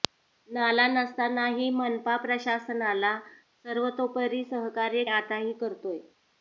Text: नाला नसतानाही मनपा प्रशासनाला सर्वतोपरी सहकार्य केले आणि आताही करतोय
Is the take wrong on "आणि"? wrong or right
wrong